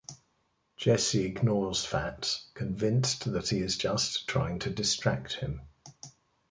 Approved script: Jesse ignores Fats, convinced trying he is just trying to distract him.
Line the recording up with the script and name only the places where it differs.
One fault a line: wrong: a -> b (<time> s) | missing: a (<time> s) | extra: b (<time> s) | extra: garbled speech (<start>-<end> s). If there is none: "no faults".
wrong: trying -> that (3.3 s)